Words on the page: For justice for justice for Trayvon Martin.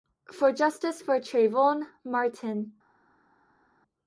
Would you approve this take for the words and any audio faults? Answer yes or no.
no